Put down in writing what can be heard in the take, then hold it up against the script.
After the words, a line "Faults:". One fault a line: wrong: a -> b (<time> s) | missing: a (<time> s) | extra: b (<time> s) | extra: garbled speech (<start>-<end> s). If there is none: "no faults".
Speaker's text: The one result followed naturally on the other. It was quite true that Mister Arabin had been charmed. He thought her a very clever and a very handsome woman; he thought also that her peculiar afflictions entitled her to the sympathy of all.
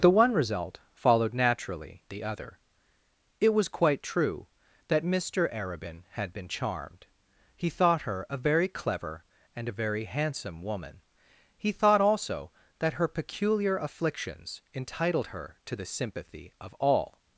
The one result followed naturally the other. It was quite true that Mister Arabin had been charmed. He thought her a very clever and a very handsome woman; he thought also that her peculiar afflictions entitled her to the sympathy of all.
Faults:
missing: on (2.0 s)